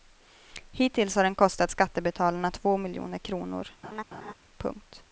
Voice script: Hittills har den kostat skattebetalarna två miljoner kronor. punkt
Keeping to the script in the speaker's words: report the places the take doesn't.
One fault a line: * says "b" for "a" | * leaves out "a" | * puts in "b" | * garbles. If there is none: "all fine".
all fine